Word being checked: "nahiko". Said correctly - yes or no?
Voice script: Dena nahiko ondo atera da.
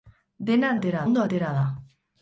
no